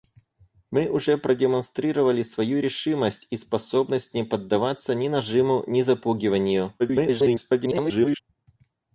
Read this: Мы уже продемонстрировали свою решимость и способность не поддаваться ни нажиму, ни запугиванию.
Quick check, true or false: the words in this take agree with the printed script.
false